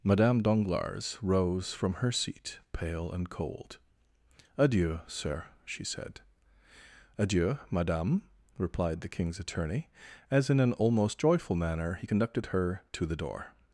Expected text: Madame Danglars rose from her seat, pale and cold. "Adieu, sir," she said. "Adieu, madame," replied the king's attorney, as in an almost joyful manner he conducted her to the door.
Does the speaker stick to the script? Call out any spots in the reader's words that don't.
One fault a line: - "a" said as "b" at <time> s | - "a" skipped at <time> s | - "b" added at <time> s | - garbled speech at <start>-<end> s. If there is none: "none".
none